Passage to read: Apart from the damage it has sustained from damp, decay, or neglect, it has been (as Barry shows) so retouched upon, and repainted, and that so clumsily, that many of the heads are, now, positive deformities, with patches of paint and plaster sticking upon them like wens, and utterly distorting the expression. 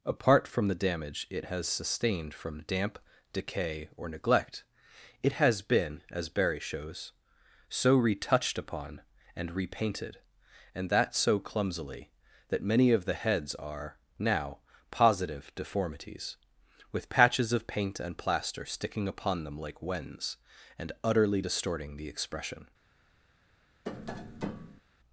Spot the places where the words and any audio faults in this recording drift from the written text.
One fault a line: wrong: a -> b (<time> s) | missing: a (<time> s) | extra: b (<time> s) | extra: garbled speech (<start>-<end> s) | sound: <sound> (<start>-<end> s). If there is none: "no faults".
sound: tap (23.8-24.8 s)